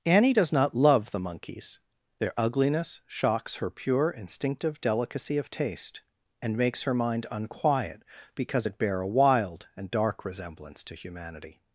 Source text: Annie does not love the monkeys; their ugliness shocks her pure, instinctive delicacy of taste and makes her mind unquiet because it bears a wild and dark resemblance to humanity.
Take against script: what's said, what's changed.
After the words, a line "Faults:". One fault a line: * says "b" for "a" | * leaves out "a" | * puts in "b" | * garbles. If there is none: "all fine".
Annie does not love the monkeys; their ugliness shocks her pure, instinctive delicacy of taste and makes her mind unquiet because it bear a wild and dark resemblance to humanity.
Faults:
* says "bear" for "bears"